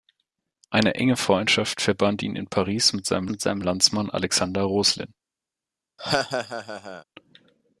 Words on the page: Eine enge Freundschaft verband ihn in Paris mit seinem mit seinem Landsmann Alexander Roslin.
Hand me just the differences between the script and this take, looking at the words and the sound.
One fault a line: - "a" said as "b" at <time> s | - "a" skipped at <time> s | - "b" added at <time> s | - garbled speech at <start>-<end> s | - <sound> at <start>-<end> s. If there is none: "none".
- laugh at 6.0-7.0 s